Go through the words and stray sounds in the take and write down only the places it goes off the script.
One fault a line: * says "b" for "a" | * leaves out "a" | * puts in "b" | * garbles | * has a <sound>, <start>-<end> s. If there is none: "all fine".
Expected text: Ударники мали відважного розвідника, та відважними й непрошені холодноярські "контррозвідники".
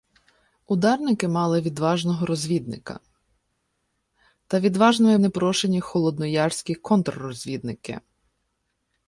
all fine